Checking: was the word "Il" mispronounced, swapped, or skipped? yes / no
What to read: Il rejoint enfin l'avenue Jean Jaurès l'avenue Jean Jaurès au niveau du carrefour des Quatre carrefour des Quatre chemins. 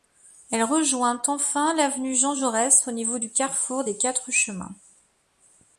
yes